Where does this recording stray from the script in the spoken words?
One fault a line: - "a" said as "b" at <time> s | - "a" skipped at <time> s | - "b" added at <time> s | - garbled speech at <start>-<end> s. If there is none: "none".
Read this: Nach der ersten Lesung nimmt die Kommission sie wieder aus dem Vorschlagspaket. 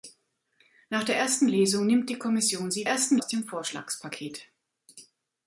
- "wieder" said as "ersten" at 2.8 s